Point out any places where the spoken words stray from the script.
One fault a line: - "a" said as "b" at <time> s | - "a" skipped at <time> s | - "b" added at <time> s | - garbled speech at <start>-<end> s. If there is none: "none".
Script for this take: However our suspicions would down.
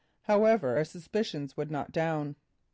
- "not" added at 1.7 s